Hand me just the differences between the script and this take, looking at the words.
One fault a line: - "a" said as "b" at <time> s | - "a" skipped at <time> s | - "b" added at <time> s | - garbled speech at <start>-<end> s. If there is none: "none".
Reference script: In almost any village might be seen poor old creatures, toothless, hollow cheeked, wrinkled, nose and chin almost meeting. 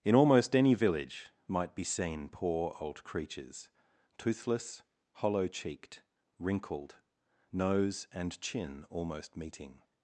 none